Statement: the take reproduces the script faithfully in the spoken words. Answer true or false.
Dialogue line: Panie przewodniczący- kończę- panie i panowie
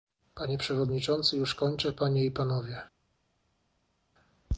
false